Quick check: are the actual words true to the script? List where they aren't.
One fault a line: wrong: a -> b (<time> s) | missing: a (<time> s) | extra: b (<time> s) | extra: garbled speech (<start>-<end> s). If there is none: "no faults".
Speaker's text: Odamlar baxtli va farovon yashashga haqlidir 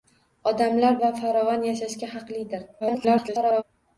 missing: baxtli (1.0 s)
extra: garbled speech (2.8-3.6 s)